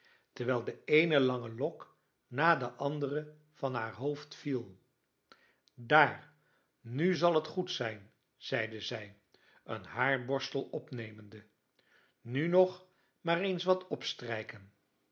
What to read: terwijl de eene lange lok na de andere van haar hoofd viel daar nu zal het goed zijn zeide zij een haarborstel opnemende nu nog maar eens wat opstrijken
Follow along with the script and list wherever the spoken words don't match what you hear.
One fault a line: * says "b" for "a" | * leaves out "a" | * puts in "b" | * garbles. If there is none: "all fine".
all fine